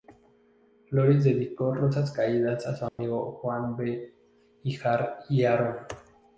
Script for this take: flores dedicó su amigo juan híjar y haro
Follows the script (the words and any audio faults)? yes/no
no